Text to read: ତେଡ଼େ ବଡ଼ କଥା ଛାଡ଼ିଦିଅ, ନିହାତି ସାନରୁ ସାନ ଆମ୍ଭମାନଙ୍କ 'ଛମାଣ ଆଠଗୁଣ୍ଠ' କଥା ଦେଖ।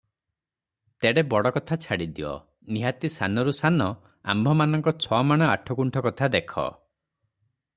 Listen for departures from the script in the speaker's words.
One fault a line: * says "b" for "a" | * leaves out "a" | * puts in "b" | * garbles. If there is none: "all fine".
all fine